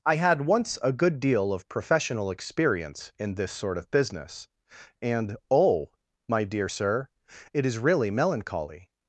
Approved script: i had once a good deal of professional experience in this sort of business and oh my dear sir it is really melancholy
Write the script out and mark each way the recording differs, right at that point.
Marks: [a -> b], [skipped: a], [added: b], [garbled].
i had once a good deal of professional experience in this sort of business and oh my dear sir it is really melancholy